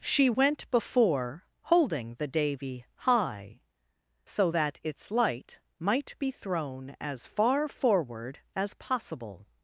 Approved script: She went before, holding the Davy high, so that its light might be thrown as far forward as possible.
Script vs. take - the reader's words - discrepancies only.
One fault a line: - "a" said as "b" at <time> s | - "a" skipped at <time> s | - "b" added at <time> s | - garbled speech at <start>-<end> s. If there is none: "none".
none